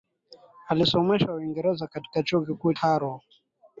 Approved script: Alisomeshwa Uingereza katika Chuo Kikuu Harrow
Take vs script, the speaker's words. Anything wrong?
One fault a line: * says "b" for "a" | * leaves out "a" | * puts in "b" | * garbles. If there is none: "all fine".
all fine